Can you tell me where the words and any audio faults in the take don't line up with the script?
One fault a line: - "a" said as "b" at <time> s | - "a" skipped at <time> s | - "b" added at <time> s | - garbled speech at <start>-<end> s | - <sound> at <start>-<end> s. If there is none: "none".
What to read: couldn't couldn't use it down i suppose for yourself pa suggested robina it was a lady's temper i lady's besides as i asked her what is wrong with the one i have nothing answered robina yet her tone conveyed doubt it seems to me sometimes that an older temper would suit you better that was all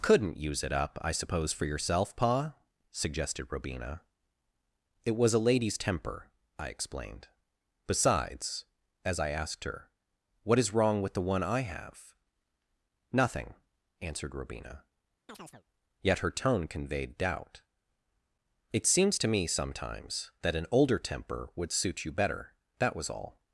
- "couldn't" skipped at 0.4 s
- "down" said as "up" at 0.7 s
- "lady's" said as "explained" at 6.7 s
- chirp at 15.3-15.6 s